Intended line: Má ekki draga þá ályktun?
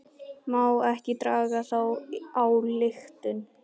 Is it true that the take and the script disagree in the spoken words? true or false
false